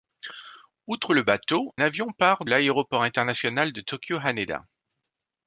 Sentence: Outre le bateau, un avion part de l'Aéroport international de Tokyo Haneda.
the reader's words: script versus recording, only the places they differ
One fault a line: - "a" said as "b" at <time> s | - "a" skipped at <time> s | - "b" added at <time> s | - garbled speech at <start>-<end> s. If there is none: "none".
- "un" skipped at 1.8 s
- "de" skipped at 2.4 s